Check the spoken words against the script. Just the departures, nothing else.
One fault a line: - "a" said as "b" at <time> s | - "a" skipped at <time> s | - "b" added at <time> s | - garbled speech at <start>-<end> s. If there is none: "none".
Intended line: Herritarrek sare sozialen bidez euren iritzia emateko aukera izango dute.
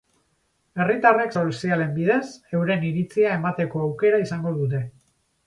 - "sare" skipped at 1.4 s